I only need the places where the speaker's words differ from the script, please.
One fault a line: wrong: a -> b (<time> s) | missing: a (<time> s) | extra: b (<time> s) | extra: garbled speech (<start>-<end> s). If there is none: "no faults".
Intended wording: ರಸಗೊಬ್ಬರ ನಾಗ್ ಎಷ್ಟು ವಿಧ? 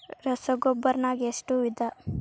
no faults